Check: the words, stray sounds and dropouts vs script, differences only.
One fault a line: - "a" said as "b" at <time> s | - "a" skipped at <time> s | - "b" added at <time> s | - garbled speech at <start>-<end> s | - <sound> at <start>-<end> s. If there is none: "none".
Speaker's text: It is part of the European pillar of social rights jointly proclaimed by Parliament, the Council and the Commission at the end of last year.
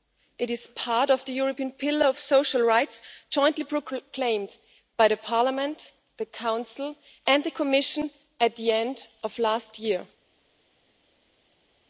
none